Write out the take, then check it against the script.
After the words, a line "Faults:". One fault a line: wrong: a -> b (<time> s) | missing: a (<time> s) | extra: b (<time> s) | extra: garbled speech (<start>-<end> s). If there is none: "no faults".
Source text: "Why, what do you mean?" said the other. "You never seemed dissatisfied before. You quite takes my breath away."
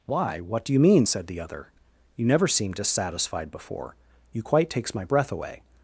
"Why, what do you mean?" said the other. "You never seemed dissatisfied before. You quite takes my breath away."
Faults:
no faults